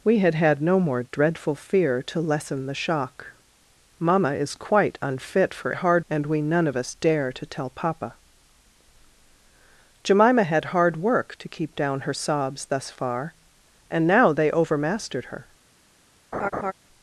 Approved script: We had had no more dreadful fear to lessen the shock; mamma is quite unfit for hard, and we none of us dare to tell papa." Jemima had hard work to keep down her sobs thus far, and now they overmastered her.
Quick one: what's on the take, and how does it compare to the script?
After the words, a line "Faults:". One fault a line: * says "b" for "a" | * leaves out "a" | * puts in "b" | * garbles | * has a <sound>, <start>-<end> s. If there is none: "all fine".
We had had no more dreadful fear to lessen the shock; mamma is quite unfit for hard, and we none of us dare to tell papa." Jemima had hard work to keep down her sobs thus far, and now they overmastered her.
Faults:
* has a laugh, 16.3-16.7 s